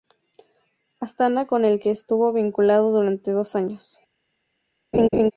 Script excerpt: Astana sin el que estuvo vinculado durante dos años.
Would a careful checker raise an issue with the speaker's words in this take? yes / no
yes